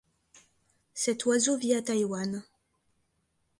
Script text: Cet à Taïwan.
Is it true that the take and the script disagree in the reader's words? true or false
true